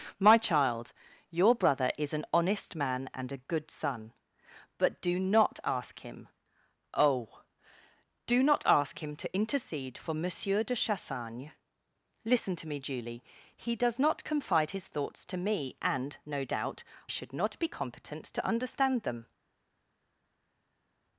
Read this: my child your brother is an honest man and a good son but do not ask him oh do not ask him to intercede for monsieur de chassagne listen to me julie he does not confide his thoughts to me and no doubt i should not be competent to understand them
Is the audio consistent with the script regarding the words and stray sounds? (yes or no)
no